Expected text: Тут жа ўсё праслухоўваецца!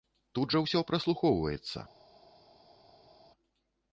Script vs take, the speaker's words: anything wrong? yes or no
no